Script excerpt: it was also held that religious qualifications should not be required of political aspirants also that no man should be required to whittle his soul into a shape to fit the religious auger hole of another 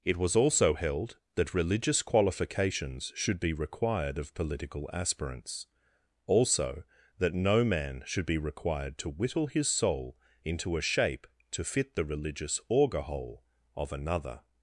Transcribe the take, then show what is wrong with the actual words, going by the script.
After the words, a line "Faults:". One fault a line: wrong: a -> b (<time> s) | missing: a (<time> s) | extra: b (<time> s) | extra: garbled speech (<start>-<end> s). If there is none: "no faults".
it was also held that religious qualifications should be required of political aspirants also that no man should be required to whittle his soul into a shape to fit the religious auger hole of another
Faults:
missing: not (3.4 s)